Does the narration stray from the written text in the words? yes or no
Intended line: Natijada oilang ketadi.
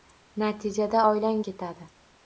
no